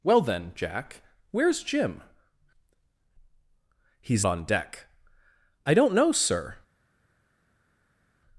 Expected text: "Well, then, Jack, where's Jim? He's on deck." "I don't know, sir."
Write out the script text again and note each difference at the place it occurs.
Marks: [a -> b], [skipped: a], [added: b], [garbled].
"Well, then, Jack, where's Jim? He's on deck." "I don't know, sir."